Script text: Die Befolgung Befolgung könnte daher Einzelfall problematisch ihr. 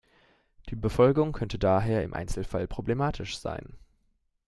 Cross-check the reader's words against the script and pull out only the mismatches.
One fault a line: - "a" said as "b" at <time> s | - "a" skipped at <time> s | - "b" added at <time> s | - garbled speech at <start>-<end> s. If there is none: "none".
- "Befolgung" skipped at 1.3 s
- "im" added at 2.0 s
- "ihr" said as "sein" at 3.4 s